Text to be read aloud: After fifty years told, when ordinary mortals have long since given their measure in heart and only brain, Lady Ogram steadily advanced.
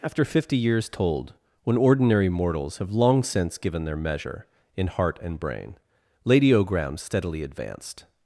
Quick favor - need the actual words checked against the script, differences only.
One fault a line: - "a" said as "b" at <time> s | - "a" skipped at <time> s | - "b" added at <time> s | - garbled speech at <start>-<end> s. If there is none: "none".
- "only" skipped at 5.4 s